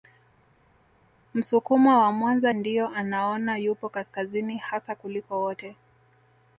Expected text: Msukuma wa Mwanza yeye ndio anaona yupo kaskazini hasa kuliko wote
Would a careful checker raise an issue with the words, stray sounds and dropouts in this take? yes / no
yes